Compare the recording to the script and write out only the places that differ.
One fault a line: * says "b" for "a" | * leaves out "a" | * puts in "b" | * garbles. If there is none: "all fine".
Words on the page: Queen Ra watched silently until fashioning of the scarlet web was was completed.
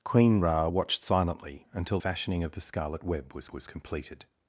all fine